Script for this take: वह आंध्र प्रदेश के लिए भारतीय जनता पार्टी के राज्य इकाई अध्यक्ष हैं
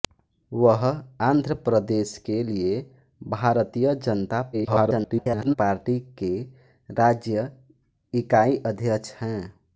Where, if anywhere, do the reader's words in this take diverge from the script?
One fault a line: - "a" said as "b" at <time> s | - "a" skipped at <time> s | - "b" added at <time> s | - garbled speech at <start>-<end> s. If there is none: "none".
- garbled speech at 4.5-5.5 s